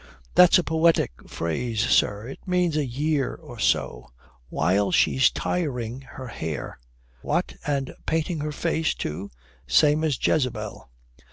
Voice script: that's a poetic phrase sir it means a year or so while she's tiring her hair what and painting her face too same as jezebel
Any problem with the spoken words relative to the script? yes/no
no